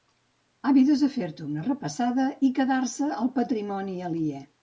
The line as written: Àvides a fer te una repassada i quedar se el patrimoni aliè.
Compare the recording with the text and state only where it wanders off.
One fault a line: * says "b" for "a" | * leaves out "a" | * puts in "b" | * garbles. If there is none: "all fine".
all fine